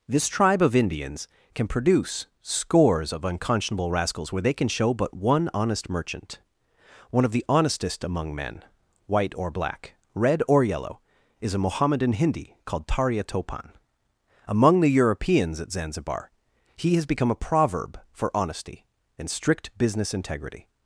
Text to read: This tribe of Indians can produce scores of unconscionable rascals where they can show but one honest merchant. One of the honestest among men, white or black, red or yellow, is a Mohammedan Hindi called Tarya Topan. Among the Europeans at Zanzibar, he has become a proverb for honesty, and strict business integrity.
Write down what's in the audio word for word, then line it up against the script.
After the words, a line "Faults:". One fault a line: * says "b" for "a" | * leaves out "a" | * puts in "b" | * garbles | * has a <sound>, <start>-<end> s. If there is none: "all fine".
This tribe of Indians can produce scores of unconscionable rascals where they can show but one honest merchant. One of the honestest among men, white or black, red or yellow, is a Mohammedan Hindi called Tarya Topan. Among the Europeans at Zanzibar, he has become a proverb for honesty, and strict business integrity.
Faults:
all fine